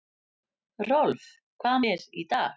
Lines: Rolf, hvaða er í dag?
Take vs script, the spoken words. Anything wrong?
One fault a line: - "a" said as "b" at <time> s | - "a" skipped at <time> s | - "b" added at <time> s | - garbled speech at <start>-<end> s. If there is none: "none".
none